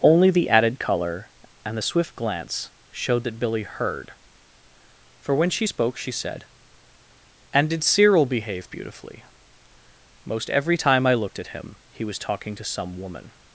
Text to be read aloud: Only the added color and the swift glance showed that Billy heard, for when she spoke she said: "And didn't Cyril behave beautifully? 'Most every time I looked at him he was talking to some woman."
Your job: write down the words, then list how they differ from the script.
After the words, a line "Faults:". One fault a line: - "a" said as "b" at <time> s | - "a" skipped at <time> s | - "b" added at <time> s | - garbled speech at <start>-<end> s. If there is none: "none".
Only the added color and the swift glance showed that Billy heard, for when she spoke she said: "And did Cyril behave beautifully? 'Most every time I looked at him he was talking to some woman."
Faults:
- "didn't" said as "did" at 7.7 s